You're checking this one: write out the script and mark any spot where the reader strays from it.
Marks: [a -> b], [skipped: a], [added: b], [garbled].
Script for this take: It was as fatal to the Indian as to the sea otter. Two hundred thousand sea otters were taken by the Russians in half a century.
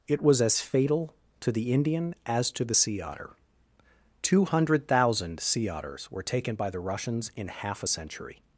It was as fatal to the Indian as to the sea otter. Two hundred thousand sea otters were taken by the Russians in half a century.